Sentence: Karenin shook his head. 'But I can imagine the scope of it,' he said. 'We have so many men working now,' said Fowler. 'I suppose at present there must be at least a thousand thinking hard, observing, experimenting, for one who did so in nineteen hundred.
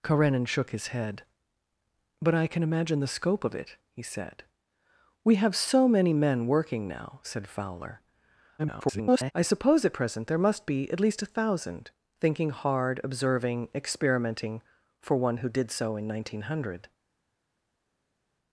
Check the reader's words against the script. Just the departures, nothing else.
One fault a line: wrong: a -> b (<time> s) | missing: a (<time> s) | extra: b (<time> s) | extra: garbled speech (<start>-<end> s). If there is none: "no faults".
extra: garbled speech (8.6-9.3 s)